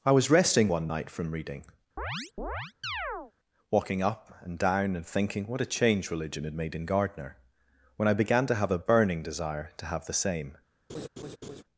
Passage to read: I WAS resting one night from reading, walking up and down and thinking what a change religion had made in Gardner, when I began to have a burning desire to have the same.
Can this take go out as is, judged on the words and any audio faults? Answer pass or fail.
fail